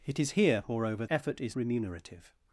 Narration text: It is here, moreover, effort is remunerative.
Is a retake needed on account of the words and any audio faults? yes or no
no